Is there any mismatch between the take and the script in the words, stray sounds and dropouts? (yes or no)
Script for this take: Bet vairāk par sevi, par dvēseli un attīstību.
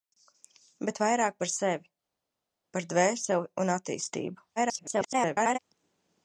yes